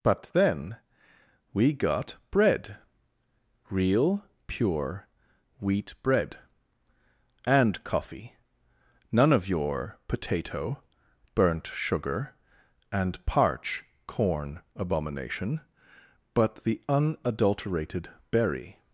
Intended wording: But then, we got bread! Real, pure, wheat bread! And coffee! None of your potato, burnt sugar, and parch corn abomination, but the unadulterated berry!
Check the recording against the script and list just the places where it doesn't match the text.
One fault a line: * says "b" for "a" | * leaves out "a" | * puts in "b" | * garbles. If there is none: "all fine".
all fine